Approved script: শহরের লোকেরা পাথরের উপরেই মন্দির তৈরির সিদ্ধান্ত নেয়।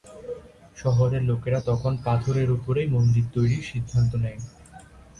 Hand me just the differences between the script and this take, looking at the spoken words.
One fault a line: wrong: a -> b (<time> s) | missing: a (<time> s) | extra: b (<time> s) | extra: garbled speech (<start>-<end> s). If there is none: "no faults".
extra: তখন (1.7 s)